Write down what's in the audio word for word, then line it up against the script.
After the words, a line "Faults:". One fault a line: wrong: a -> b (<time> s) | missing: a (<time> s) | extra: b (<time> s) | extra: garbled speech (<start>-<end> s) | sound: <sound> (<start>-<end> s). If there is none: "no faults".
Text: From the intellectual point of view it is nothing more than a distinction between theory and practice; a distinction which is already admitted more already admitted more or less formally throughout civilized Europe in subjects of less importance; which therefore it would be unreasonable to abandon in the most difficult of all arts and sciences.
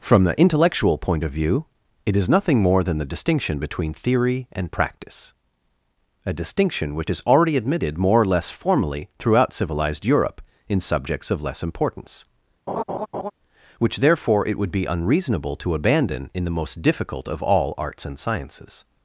From the intellectual point of view it is nothing more than the distinction between theory and practice; a distinction which is already admitted more or less formally throughout civilized Europe in subjects of less importance; which therefore it would be unreasonable to abandon in the most difficult of all arts and sciences.
Faults:
wrong: a -> the (3.0 s)
missing: already admitted more (8.2 s)
sound: laugh (12.7-13.3 s)